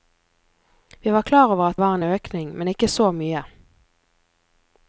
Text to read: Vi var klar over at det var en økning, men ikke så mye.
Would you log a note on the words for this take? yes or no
yes